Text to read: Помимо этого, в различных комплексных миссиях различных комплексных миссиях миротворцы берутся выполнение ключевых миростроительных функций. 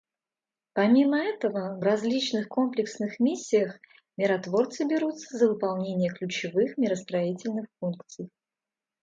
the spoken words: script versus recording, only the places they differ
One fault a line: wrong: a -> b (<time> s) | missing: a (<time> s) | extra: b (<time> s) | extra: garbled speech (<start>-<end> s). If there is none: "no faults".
missing: различных комплексных миссиях (3.8 s)
extra: за (5.4 s)